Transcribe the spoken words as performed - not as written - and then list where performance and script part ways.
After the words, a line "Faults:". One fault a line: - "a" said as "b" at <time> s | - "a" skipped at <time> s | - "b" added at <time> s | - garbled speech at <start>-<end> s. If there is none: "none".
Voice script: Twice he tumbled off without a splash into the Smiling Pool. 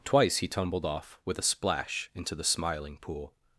Twice he tumbled off with a splash into the Smiling Pool.
Faults:
- "without" said as "with" at 1.3 s